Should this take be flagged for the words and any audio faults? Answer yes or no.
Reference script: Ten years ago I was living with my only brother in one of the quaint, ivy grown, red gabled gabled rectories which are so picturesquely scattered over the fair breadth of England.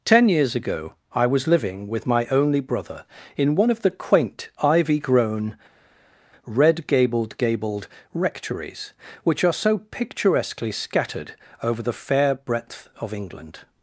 no